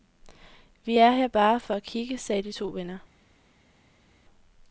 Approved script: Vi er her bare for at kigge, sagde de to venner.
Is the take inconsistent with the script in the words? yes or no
no